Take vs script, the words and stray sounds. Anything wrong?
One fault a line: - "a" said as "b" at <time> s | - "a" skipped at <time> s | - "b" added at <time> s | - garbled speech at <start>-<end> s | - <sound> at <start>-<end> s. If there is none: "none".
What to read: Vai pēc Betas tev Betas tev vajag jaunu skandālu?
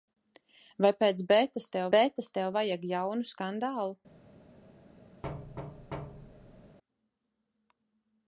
- thud at 5.2-6.8 s